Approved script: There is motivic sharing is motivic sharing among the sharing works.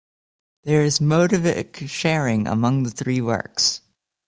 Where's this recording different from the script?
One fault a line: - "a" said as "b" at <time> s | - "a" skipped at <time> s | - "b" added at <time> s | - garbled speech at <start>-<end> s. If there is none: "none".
- "is motivic sharing" skipped at 2.5 s
- "sharing" said as "three" at 2.9 s